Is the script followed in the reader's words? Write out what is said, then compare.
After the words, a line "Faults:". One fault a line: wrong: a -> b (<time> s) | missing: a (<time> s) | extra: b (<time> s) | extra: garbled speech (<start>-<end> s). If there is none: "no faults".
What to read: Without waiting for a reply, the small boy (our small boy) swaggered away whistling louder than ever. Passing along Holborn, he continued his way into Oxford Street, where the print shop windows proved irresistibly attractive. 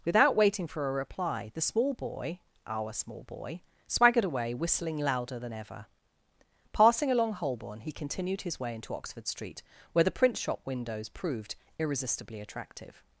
Without waiting for a reply, the small boy (our small boy) swaggered away whistling louder than ever. Passing along Holborn, he continued his way into Oxford Street, where the print shop windows proved irresistibly attractive.
Faults:
no faults